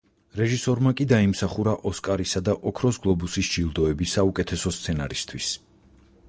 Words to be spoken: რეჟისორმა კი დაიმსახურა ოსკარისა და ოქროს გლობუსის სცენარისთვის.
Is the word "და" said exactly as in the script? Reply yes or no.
yes